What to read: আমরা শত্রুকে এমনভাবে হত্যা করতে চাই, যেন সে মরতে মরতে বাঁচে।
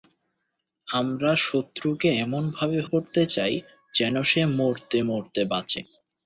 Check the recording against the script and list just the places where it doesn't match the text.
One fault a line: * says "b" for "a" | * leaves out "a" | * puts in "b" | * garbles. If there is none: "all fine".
* leaves out "হত্যা"